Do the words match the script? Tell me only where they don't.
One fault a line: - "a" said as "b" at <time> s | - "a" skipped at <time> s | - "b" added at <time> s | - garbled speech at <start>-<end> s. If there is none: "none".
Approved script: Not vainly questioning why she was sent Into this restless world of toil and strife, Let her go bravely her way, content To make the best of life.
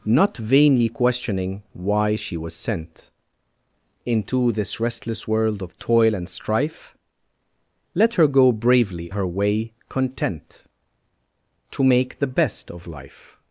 none